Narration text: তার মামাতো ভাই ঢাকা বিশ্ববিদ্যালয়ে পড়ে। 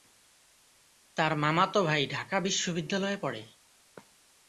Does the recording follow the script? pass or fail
pass